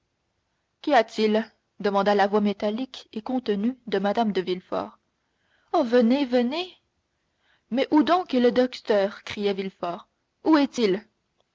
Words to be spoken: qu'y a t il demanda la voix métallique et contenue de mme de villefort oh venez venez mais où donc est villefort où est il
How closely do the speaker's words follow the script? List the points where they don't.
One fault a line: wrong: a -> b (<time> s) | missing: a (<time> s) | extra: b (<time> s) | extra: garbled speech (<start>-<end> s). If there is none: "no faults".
extra: le docteur criait (8.4 s)